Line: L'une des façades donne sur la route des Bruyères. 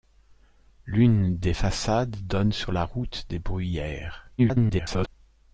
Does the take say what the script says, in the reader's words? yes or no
no